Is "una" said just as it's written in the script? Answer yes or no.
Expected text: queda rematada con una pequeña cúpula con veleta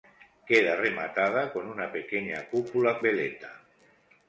yes